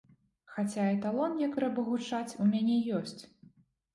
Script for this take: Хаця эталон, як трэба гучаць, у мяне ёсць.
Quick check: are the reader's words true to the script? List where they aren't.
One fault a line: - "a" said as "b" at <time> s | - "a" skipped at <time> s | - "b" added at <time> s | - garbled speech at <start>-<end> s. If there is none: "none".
none